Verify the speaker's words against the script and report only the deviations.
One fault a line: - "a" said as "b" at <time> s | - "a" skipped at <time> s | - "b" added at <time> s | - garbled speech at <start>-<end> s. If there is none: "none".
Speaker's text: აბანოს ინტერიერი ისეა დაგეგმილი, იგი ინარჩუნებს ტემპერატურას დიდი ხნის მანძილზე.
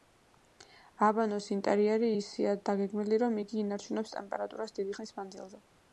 - "რომ" added at 3.2 s